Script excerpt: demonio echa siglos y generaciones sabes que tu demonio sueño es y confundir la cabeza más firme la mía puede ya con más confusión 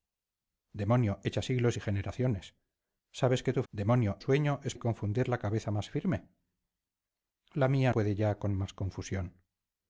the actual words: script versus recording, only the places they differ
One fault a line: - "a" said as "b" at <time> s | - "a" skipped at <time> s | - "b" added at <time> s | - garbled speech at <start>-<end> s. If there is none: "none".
none